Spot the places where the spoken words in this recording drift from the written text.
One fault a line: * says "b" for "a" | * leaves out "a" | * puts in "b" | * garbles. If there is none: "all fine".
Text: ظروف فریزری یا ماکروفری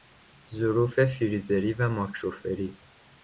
* says "و" for "یا"